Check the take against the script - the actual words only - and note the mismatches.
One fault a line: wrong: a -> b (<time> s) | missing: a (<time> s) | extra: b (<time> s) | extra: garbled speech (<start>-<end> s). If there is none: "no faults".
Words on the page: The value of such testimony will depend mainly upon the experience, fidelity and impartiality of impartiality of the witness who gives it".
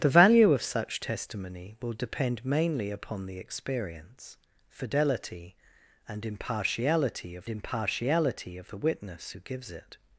no faults